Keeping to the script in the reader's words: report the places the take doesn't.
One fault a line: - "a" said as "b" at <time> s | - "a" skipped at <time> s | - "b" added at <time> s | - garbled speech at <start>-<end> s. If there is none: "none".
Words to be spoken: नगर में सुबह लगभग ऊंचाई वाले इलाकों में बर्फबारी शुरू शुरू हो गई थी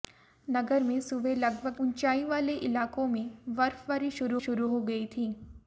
none